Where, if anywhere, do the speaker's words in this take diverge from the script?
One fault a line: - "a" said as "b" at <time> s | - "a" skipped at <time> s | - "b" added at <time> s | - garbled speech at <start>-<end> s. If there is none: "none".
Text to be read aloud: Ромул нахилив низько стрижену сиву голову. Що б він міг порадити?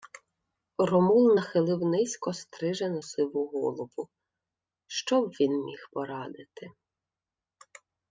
none